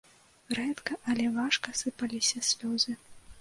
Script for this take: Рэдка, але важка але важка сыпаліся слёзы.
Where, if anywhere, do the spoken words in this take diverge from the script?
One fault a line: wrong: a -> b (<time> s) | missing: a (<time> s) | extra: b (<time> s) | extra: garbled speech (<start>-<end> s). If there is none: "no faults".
missing: але важка (1.8 s)